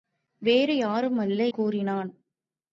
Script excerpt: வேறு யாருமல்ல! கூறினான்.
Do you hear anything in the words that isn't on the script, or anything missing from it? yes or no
no